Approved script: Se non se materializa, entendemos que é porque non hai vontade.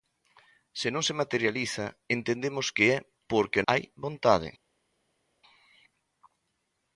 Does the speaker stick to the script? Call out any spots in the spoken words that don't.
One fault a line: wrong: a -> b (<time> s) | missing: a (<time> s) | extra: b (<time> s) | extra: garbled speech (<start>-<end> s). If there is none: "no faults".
missing: non (3.6 s)